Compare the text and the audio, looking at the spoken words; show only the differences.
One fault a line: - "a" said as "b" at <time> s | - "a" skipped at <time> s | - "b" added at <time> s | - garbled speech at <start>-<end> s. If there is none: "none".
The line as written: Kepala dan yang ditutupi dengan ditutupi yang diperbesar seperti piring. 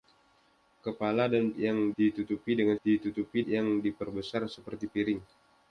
none